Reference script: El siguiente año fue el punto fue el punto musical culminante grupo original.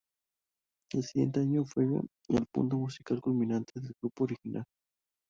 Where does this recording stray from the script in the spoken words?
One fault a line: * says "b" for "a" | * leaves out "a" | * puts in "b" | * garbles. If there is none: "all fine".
* leaves out "fue el punto"
* puts in "del"